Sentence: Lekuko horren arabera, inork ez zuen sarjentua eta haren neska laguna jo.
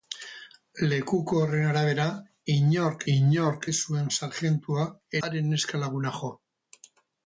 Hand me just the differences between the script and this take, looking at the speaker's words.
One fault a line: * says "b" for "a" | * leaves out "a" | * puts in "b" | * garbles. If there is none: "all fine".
* puts in "inork"
* leaves out "eta"